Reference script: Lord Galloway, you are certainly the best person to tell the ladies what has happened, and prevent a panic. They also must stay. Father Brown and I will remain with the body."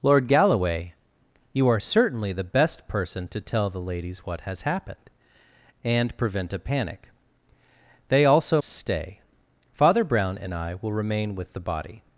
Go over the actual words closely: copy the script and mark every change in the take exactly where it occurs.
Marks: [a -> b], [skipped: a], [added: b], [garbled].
Lord Galloway, you are certainly the best person to tell the ladies what has happened, and prevent a panic. They also [skipped: must] stay. Father Brown and I will remain with the body."